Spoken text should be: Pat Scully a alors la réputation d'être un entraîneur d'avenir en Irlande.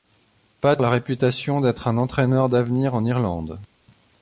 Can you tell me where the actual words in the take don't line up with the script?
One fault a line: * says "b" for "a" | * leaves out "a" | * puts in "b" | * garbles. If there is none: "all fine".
* leaves out "Scully a alors"